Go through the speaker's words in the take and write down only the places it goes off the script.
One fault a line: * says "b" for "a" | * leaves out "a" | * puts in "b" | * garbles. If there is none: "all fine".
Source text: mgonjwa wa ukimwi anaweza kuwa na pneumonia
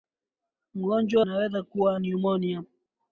* leaves out "wa ukimwi"
* leaves out "na"